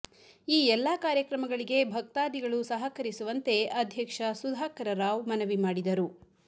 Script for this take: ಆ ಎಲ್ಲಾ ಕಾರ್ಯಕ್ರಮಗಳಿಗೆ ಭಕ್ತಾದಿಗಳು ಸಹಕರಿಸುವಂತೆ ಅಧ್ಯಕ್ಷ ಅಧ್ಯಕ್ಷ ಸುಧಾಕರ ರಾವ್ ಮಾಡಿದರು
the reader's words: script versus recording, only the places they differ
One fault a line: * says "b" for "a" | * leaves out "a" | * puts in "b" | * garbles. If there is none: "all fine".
* says "ಈ" for "ಆ"
* leaves out "ಅಧ್ಯಕ್ಷ"
* puts in "ಮನವಿ"